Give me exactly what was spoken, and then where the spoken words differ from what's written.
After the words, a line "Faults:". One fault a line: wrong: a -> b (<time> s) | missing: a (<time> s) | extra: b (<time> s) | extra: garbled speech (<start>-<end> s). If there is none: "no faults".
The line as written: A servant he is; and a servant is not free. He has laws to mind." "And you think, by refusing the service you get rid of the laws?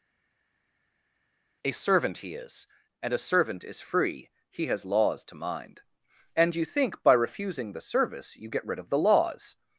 A servant he is; and a servant is free. He has laws to mind." "And you think, by refusing the service you get rid of the laws?
Faults:
missing: not (3.8 s)